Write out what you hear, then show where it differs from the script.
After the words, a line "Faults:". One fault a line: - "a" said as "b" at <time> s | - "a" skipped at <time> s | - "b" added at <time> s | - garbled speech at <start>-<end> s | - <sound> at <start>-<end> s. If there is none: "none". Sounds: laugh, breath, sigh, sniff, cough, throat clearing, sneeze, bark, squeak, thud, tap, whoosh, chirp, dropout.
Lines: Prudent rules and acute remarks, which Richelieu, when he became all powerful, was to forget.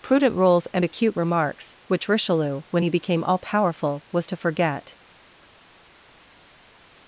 Prudent rules and acute remarks, which Richelieu, when he became all powerful, was to forget.
Faults:
none